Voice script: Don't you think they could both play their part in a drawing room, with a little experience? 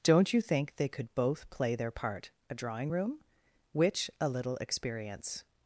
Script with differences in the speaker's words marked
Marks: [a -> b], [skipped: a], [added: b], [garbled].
Don't you think they could both play their part [skipped: in] a drawing room, [with -> which] a little experience?